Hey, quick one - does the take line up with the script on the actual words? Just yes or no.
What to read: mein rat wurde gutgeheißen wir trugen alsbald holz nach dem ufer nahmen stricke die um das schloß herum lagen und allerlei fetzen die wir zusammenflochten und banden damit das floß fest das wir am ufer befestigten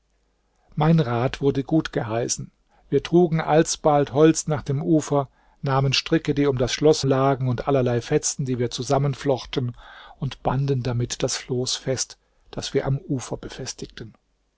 no